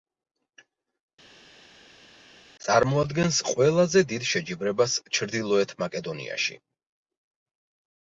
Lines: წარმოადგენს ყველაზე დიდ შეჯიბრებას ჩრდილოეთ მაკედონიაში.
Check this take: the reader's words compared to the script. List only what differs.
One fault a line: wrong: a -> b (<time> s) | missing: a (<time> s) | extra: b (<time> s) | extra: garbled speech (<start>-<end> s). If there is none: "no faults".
no faults